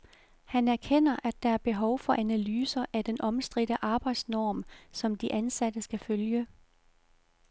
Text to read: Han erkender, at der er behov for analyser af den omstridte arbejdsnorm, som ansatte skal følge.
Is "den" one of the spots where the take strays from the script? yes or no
no